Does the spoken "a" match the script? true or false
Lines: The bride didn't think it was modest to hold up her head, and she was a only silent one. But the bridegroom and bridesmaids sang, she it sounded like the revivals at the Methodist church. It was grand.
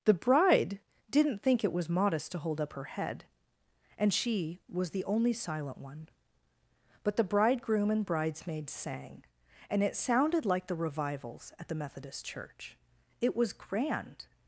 false